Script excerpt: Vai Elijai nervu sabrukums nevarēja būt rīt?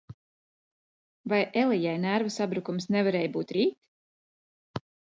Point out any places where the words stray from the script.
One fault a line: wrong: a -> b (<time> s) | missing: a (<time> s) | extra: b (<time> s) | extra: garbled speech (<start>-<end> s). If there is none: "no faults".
no faults